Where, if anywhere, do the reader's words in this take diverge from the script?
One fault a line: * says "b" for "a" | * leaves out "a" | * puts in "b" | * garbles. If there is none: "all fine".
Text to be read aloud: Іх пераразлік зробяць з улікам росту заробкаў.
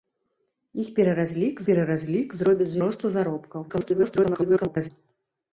* puts in "пераразлік"
* leaves out "улікам"
* garbles